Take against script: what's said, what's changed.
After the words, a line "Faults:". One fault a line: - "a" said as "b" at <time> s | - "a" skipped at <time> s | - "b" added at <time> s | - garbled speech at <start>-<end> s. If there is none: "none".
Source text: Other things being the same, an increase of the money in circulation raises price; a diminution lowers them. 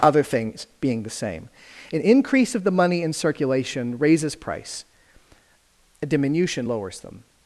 Other things being the same, an increase of the money in circulation raises price; a diminution lowers them.
Faults:
none